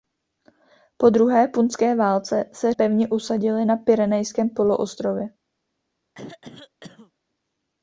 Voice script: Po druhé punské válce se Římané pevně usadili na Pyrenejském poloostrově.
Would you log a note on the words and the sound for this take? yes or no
yes